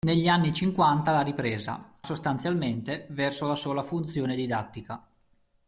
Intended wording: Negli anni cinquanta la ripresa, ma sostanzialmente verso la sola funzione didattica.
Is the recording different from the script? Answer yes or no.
yes